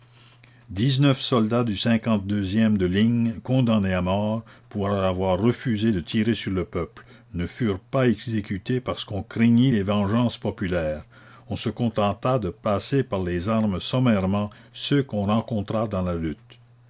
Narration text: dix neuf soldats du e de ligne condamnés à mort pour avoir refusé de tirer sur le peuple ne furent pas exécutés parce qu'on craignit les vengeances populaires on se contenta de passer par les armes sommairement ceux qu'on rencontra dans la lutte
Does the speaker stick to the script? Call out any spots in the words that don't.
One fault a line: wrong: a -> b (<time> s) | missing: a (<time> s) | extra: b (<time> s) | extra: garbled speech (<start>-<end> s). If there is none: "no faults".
no faults